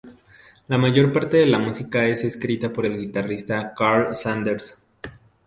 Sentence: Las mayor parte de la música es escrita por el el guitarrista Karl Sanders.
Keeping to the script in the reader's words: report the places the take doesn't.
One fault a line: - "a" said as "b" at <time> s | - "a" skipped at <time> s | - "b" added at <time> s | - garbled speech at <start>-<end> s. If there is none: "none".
- "Las" said as "La" at 0.7 s
- "el" skipped at 3.0 s